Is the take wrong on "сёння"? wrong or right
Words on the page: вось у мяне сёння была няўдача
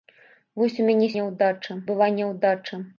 wrong